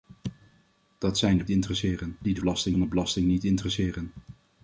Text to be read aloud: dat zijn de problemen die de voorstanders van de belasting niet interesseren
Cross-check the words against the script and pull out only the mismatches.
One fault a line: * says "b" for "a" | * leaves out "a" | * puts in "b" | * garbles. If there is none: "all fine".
* says "interesseren" for "problemen"
* says "belasting" for "voorstanders"